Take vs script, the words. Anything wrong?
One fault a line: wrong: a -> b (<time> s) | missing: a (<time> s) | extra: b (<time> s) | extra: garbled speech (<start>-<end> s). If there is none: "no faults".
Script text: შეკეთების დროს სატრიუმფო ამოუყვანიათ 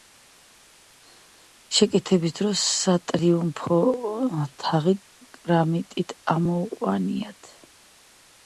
extra: თაღი კრამიტით (4.6 s)